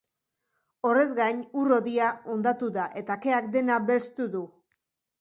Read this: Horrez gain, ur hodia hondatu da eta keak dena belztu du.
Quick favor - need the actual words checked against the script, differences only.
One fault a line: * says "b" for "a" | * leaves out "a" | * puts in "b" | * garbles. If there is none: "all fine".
all fine